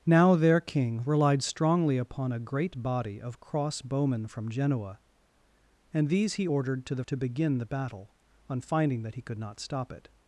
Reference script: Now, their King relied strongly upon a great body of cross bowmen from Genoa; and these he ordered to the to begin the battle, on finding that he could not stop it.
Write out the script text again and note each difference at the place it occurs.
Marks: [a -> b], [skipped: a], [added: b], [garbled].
Now, their King relied strongly upon a great body of cross bowmen from Genoa; and these he ordered to the to begin the battle, on finding that he could not stop it.